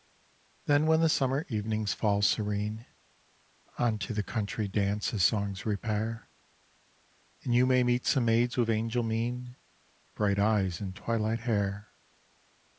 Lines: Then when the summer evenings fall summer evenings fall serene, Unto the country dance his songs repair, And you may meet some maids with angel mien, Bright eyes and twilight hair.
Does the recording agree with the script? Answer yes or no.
no